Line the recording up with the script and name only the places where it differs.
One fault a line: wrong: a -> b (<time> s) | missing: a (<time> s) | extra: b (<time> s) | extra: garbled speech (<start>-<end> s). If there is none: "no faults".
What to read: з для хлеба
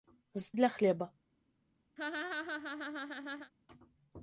no faults